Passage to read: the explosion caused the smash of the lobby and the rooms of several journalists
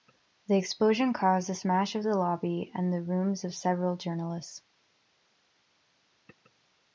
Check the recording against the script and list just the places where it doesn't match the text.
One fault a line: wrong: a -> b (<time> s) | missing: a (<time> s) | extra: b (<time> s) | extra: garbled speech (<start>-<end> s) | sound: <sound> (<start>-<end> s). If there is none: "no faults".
no faults